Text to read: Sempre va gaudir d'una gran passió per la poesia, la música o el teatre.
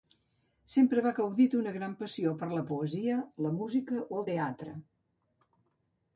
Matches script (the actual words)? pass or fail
pass